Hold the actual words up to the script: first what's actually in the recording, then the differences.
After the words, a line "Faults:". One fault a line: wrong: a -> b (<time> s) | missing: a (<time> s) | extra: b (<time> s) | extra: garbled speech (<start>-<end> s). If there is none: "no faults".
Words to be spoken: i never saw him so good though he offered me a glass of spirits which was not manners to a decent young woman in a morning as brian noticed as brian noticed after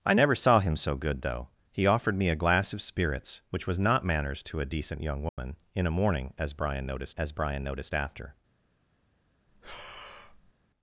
i never saw him so good though he offered me a glass of spirits which was not manners to a decent young woman in a morning as brian noticed as brian noticed after
Faults:
no faults